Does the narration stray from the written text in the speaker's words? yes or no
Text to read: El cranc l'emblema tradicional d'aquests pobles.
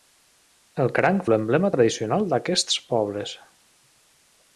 no